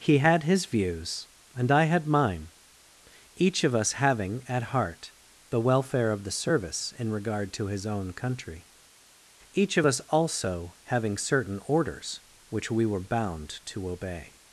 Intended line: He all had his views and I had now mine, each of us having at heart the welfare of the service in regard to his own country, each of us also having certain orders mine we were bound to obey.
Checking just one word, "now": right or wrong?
wrong